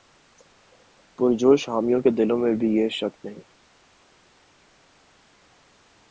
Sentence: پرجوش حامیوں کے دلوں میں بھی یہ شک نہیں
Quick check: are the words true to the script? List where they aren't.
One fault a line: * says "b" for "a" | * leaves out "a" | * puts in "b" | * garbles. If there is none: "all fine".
all fine